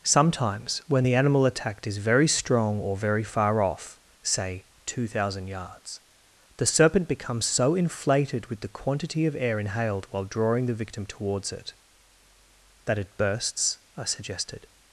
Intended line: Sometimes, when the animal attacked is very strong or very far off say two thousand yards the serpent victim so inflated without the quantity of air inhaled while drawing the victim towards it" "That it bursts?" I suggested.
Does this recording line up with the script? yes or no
no